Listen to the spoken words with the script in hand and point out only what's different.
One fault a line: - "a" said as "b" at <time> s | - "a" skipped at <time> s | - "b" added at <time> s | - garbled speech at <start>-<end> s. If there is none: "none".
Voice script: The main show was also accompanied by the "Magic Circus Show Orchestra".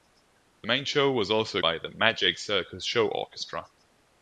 - "accompanied" skipped at 1.6 s